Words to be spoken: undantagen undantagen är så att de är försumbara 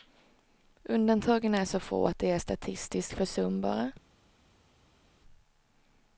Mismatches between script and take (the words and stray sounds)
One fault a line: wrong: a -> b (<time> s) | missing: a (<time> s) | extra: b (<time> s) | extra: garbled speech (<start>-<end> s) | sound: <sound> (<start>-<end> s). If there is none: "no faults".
missing: undantagen (1.6 s)
extra: få (1.8 s)
extra: statistiskt (2.4 s)